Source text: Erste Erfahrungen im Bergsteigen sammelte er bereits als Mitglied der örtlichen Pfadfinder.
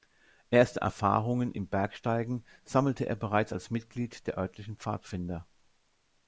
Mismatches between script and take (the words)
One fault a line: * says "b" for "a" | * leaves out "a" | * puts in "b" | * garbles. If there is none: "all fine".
all fine